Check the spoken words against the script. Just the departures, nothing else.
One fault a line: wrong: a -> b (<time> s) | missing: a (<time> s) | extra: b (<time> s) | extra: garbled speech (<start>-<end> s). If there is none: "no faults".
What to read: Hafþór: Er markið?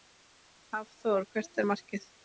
extra: Hvert (1.4 s)